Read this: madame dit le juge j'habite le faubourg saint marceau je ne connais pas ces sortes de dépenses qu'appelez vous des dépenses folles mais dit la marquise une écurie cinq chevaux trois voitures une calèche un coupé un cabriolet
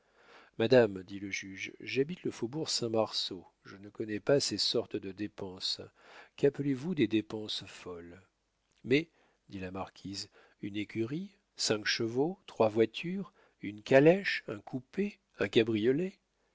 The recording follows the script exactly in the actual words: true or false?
true